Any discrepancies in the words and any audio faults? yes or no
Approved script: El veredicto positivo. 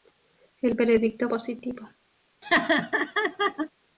yes